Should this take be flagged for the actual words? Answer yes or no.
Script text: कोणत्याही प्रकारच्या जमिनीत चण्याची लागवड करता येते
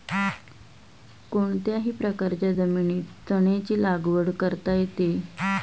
no